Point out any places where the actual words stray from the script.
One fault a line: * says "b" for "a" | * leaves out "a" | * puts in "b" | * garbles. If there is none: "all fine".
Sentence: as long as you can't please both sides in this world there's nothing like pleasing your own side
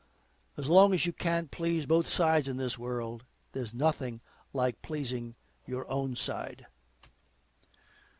all fine